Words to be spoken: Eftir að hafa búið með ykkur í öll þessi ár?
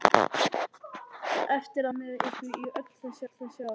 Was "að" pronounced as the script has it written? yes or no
no